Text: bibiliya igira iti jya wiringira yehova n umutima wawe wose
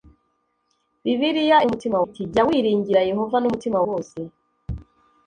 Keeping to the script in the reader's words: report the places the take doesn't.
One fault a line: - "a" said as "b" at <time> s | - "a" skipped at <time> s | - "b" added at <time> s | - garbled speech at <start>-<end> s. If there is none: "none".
- "igira" said as "umutima" at 1.7 s
- "wawe" skipped at 3.8 s